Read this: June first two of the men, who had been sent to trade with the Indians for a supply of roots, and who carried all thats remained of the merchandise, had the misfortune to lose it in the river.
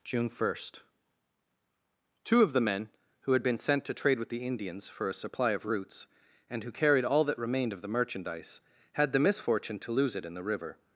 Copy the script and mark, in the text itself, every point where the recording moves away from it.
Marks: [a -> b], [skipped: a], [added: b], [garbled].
June first two of the men, who had been sent to trade with the Indians for a supply of roots, and who carried all [thats -> that] remained of the merchandise, had the misfortune to lose it in the river.